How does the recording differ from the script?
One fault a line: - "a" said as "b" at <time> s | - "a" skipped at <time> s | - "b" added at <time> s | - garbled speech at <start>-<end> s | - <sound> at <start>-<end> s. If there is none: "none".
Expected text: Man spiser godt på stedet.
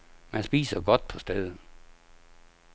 none